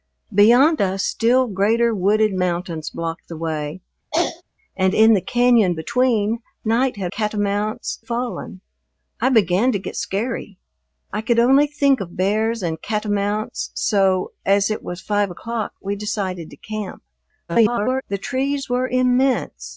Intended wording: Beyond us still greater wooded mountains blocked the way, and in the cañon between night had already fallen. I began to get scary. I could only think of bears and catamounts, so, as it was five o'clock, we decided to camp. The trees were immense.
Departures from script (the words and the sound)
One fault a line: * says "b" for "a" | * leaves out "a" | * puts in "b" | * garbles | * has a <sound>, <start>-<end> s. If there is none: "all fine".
* has a throat clearing, 4.1-4.4 s
* says "catamounts" for "already"
* garbles